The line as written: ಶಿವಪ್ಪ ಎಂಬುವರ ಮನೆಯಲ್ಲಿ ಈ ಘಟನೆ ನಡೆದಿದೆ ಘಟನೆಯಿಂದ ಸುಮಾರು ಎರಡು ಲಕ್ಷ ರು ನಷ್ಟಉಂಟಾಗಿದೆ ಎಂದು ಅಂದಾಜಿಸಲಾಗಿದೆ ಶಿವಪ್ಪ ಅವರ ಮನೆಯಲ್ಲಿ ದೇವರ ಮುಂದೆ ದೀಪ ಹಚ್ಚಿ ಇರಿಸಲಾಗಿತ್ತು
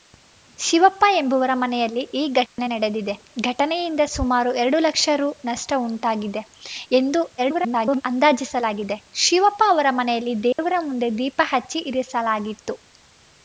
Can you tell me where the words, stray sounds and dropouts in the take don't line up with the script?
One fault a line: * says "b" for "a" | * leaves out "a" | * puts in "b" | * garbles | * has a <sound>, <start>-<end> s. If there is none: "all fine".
* has a dropout, 2.5-2.6 s
* garbles
* has a dropout, 10.5-10.6 s